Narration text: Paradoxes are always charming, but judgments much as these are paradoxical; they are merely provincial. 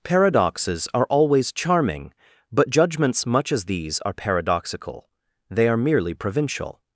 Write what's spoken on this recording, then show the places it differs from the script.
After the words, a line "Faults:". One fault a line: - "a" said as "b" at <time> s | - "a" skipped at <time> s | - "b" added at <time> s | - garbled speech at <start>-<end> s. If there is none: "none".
Paradoxes are always charming, but judgments much as these are paradoxical; they are merely provincial.
Faults:
none